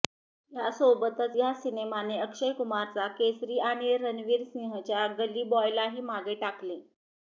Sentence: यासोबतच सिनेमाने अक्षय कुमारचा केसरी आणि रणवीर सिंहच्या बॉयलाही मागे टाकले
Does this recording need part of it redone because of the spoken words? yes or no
yes